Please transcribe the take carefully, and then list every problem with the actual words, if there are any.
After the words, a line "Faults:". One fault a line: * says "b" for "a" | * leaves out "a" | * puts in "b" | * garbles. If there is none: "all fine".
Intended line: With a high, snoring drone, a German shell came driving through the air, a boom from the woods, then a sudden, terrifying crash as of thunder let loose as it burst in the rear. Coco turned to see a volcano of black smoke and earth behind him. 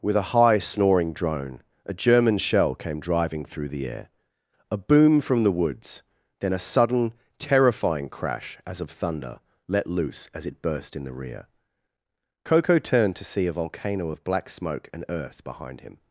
With a high, snoring drone, a German shell came driving through the air, a boom from the woods, then a sudden, terrifying crash as of thunder let loose as it burst in the rear. Coco turned to see a volcano of black smoke and earth behind him.
Faults:
all fine